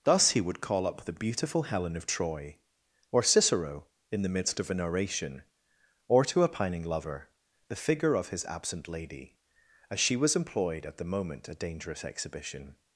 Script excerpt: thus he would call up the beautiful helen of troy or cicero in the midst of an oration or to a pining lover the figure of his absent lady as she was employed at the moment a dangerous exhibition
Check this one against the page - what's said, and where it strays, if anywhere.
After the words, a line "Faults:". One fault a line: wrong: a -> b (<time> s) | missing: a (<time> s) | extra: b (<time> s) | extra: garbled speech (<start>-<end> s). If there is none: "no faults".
thus he would call up the beautiful helen of troy or cicero in the midst of an oration or to a pining lover the figure of his absent lady as she was employed at the moment a dangerous exhibition
Faults:
no faults